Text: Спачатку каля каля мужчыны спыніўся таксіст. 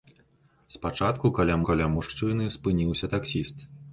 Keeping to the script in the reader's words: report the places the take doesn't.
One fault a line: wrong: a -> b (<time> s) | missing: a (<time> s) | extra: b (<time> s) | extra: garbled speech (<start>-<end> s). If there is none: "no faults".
no faults